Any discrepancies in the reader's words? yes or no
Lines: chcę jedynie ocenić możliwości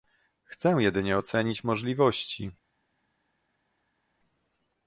no